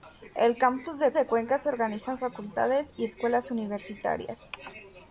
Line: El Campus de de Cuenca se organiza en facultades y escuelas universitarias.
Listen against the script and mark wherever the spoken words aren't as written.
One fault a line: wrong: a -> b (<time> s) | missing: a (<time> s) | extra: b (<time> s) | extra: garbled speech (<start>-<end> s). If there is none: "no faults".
no faults